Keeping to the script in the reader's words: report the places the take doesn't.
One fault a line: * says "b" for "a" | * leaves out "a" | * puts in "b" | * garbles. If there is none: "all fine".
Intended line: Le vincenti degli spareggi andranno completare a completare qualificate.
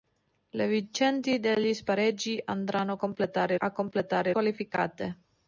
all fine